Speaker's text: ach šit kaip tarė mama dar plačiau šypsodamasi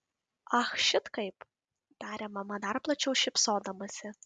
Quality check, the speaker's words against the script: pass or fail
pass